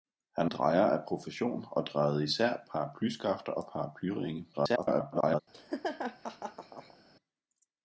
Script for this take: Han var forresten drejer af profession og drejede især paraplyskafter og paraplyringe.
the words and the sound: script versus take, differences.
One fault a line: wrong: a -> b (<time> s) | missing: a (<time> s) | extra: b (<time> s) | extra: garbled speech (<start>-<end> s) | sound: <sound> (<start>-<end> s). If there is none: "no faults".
missing: var forresten (0.5 s)
extra: garbled speech (4.5-5.4 s)
sound: laugh (5.5-7.0 s)